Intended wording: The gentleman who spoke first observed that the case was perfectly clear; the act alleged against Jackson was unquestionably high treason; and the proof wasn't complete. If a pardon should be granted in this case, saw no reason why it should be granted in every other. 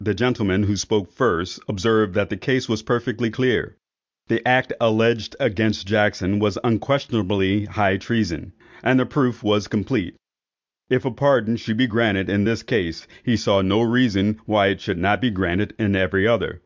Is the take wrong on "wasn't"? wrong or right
wrong